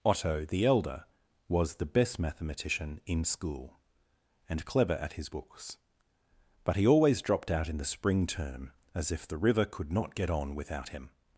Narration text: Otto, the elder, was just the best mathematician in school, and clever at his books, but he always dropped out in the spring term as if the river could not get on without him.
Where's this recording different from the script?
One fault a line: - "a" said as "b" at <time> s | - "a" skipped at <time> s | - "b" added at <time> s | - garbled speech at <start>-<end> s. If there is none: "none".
- "just" skipped at 1.8 s